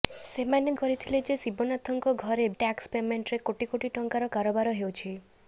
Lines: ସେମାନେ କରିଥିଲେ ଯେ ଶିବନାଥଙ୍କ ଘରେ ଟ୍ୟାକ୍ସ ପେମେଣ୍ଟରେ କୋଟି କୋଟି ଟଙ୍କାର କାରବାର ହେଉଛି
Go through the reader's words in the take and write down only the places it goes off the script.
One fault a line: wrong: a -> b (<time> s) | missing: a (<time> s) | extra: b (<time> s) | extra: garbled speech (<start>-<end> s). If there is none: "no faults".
no faults